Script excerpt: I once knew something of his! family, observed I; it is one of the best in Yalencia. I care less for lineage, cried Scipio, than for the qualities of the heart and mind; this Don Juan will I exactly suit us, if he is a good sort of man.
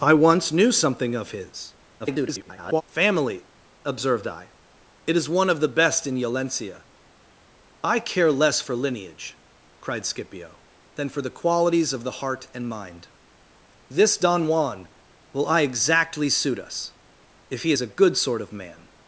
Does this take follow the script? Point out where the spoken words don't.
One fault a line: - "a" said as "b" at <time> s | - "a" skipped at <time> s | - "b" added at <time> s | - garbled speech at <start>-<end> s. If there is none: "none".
- garbled speech at 2.0-2.8 s